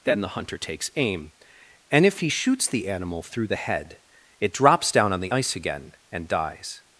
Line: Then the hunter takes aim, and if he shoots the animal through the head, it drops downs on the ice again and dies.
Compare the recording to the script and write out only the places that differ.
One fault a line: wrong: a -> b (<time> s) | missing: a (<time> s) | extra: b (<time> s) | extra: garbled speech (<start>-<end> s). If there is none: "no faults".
wrong: downs -> down (4.9 s)